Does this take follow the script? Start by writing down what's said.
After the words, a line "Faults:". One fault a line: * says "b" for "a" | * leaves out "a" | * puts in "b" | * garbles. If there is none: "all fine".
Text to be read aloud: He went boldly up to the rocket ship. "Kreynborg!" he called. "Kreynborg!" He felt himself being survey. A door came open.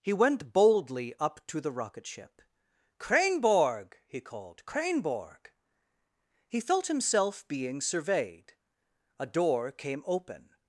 He went boldly up to the rocket ship. "Kreynborg!" he called. "Kreynborg!" He felt himself being surveyed. A door came open.
Faults:
* says "surveyed" for "survey"